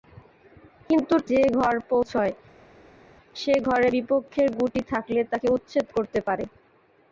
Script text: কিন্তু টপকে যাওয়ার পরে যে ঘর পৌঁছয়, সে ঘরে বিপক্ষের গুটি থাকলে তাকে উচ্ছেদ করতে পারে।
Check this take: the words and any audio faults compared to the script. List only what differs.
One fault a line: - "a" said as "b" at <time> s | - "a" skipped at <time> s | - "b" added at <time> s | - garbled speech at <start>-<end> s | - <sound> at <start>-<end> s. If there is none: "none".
- "টপকে যাওয়ার পরে" skipped at 1.1 s